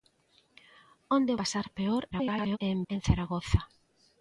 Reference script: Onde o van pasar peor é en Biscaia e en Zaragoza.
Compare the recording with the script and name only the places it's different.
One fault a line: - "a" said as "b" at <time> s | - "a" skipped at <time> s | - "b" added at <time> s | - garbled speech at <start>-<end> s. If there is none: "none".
- "van" skipped at 1.4 s
- garbled speech at 2.1-2.6 s
- "Biscaia" skipped at 2.8 s